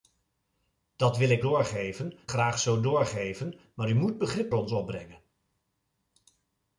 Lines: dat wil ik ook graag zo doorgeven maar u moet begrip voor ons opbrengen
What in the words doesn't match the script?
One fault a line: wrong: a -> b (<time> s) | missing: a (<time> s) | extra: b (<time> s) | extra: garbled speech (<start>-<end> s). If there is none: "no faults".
wrong: ook -> doorgeven (1.4 s)
missing: voor (4.5 s)